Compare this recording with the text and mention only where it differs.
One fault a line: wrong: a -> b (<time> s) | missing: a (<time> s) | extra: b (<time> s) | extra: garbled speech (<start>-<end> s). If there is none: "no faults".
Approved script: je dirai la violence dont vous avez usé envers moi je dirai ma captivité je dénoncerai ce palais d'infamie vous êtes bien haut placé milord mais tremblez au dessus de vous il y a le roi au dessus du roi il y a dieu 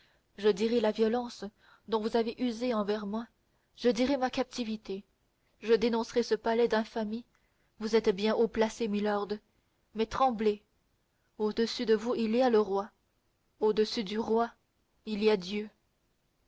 no faults